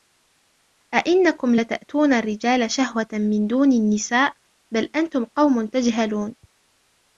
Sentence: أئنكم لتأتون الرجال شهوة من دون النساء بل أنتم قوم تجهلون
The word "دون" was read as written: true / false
true